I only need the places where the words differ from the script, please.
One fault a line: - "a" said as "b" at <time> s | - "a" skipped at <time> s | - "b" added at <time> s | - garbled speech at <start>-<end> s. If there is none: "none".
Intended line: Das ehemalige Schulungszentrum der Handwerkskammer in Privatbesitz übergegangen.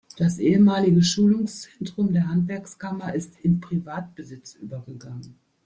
- "ist" added at 3.1 s